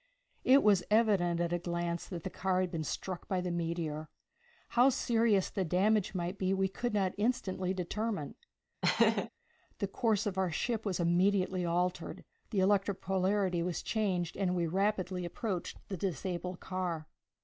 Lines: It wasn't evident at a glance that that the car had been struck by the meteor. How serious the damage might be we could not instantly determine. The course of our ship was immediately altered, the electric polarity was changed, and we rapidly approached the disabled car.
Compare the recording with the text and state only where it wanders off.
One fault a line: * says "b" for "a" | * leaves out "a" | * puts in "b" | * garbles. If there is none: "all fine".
* says "was" for "wasn't"
* leaves out "that"